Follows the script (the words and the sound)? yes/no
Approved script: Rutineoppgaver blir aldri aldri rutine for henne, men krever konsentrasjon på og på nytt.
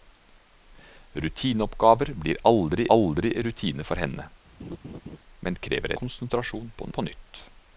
no